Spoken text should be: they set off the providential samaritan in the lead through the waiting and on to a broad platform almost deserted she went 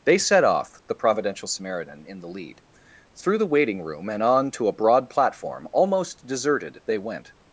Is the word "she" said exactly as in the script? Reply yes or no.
no